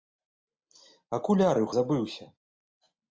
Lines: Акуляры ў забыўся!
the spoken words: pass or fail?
pass